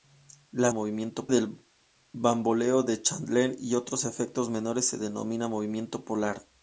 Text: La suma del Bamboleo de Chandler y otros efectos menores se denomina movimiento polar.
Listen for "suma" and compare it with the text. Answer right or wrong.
wrong